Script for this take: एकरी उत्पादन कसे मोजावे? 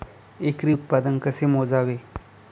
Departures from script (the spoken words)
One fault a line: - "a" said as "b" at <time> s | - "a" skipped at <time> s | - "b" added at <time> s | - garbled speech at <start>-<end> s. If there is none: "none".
none